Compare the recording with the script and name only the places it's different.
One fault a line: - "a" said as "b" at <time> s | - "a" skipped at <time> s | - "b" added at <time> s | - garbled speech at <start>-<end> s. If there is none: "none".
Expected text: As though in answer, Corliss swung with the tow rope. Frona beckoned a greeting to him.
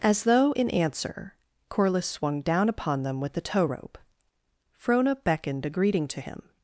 - "down upon them" added at 2.4 s